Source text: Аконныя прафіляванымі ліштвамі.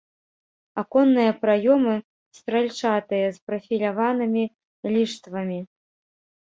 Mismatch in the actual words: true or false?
true